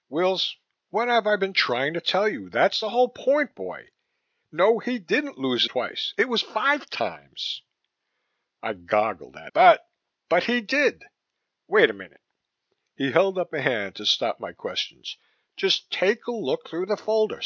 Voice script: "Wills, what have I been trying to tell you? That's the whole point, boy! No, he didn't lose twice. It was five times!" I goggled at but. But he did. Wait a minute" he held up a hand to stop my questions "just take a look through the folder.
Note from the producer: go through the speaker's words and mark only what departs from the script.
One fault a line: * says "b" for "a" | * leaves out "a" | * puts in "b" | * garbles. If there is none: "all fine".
all fine